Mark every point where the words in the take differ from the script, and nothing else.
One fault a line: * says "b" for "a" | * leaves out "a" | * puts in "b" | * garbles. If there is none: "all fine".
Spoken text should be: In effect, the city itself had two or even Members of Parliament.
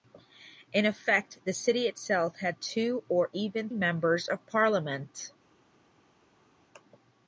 all fine